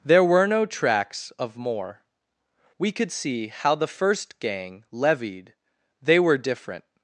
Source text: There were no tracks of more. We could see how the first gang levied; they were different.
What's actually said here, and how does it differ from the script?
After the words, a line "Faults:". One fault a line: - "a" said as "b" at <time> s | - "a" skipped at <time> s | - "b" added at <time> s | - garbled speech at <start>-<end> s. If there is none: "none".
There were no tracks of more. We could see how the first gang levied; they were different.
Faults:
none